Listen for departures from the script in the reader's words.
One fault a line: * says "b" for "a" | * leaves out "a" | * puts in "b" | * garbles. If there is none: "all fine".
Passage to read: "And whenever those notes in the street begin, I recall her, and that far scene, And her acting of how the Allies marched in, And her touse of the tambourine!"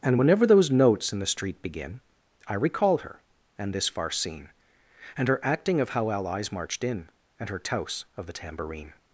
* says "this" for "that"
* leaves out "the"